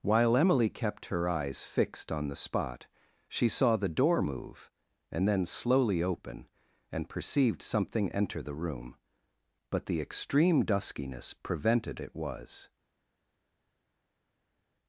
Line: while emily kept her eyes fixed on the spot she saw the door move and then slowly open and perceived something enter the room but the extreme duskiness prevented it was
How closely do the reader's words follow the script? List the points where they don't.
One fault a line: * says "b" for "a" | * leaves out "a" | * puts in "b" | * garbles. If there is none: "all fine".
all fine